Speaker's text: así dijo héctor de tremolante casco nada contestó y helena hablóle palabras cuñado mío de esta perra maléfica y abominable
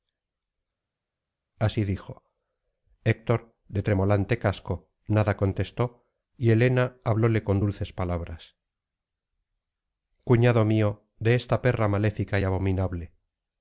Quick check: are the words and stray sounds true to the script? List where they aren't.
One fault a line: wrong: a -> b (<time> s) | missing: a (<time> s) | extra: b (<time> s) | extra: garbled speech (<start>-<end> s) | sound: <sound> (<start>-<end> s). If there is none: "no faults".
extra: con dulces (7.4 s)